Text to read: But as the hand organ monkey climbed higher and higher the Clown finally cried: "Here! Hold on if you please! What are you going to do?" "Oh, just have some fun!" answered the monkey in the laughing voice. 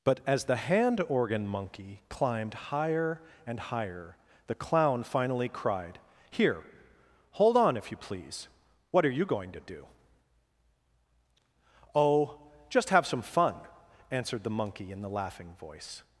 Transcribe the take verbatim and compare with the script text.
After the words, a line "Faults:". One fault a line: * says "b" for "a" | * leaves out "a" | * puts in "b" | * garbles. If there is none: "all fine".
But as the hand organ monkey climbed higher and higher the Clown finally cried: "Here! Hold on if you please! What are you going to do?" "Oh, just have some fun!" answered the monkey in the laughing voice.
Faults:
all fine